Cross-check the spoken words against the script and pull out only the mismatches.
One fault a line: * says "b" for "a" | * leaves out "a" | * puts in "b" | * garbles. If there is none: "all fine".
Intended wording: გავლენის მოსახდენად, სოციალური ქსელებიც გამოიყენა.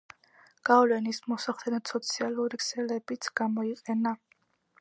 all fine